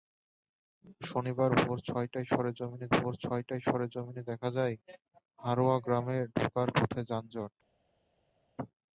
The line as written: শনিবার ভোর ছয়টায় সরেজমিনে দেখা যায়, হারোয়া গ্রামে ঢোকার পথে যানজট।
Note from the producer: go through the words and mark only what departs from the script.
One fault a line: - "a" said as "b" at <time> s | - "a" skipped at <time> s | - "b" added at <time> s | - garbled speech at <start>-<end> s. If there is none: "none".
- "ভোর ছয়টায় সরেজমিনে" added at 2.9 s